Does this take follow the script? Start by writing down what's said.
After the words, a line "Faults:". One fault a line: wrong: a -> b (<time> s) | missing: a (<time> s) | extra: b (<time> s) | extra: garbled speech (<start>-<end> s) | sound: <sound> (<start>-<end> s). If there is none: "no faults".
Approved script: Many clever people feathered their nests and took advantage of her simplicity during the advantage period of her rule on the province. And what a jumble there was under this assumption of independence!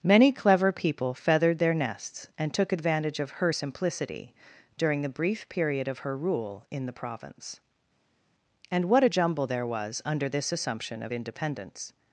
Many clever people feathered their nests and took advantage of her simplicity during the brief period of her rule in the province. And what a jumble there was under this assumption of independence!
Faults:
wrong: advantage -> brief (5.1 s)
wrong: on -> in (6.7 s)